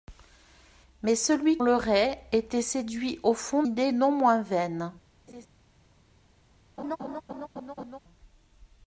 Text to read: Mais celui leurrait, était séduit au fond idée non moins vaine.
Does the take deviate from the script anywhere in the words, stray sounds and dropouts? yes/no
yes